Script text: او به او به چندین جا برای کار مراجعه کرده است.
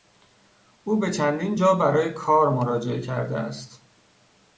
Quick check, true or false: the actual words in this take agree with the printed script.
false